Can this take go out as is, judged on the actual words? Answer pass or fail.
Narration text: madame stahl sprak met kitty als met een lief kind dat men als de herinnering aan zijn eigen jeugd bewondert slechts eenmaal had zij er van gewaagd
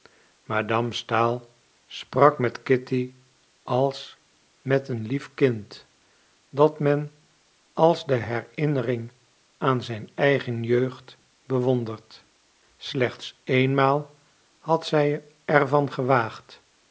pass